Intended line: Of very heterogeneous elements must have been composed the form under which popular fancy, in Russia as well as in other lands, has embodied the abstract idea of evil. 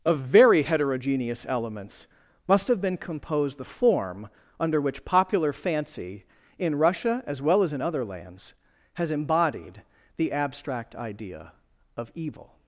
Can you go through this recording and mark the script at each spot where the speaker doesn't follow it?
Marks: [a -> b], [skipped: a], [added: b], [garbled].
Of very heterogeneous elements must have been composed the form under which popular fancy, in Russia as well as in other lands, has embodied the abstract idea of evil.